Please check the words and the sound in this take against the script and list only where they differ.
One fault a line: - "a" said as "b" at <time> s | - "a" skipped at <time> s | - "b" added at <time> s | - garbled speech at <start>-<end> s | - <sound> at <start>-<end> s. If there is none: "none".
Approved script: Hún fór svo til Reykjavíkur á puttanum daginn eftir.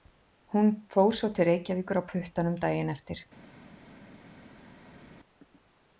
none